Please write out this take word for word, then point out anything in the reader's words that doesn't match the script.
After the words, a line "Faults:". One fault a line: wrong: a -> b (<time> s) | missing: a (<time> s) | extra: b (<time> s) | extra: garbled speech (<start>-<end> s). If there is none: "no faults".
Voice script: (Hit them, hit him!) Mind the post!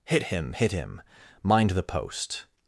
(Hit him, hit him!) Mind the post!
Faults:
wrong: them -> him (0.2 s)